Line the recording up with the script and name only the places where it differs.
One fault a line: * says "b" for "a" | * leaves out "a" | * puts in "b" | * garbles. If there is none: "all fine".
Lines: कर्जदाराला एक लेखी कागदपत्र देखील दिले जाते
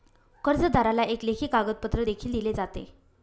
all fine